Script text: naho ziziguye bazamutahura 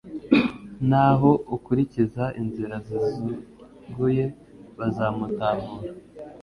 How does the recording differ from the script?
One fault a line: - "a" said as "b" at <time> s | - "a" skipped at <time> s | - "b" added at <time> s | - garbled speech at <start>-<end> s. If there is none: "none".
- "ukurikiza inzira" added at 1.6 s